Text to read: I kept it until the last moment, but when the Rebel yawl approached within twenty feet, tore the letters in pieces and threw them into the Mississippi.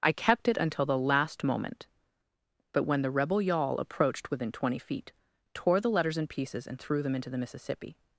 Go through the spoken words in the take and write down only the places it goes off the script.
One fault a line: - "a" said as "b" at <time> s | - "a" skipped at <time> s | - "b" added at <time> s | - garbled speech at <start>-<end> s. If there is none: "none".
none